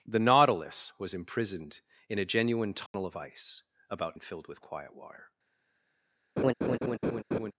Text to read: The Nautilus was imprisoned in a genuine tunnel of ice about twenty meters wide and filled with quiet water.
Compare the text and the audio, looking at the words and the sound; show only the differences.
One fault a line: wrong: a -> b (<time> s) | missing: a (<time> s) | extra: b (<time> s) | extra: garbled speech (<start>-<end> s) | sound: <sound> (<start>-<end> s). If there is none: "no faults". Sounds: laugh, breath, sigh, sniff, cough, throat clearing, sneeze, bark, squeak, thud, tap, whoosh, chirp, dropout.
sound: dropout (2.9-2.9 s)
missing: twenty meters wide (4.2 s)
sound: laugh (6.4-7.5 s)